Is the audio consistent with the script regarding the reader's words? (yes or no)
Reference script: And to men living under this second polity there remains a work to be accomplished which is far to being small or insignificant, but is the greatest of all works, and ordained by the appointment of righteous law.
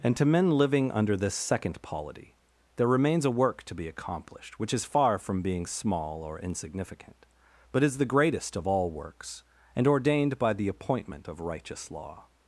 no